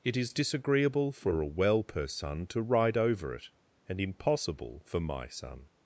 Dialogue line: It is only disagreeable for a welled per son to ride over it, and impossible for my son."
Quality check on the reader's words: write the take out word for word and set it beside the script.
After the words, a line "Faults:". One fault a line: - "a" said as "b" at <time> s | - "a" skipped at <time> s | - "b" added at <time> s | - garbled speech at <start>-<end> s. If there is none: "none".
It is disagreeable for a well per son to ride over it, and impossible for my son."
Faults:
- "only" skipped at 0.3 s
- "welled" said as "well" at 1.5 s